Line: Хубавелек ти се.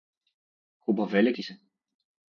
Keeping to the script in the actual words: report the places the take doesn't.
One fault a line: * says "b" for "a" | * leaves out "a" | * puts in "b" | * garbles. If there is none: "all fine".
all fine